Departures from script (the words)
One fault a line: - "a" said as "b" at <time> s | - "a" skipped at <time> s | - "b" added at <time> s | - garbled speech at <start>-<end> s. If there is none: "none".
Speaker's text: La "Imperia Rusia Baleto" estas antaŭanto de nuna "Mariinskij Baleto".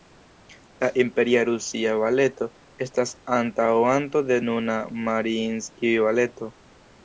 none